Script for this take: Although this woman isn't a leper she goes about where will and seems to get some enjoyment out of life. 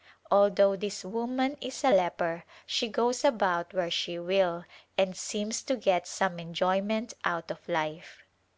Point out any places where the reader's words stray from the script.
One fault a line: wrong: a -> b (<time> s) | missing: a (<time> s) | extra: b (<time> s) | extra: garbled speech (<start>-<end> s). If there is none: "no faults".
wrong: isn't -> is (1.6 s)
extra: she (3.9 s)